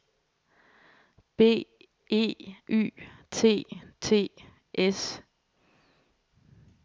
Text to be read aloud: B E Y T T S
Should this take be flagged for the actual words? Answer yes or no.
no